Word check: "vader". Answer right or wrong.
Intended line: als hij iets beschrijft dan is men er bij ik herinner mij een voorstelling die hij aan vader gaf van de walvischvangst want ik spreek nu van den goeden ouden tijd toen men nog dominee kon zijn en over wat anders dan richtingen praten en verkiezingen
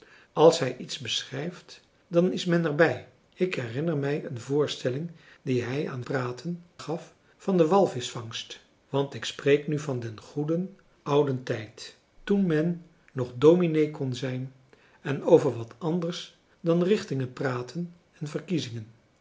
wrong